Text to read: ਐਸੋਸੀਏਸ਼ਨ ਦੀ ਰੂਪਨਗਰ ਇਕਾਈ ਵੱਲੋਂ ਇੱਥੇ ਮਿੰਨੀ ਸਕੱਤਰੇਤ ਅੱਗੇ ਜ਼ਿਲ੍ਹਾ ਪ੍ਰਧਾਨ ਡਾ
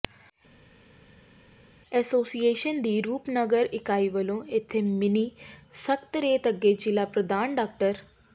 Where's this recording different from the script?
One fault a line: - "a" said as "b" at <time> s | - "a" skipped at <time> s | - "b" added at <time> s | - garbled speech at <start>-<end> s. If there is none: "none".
none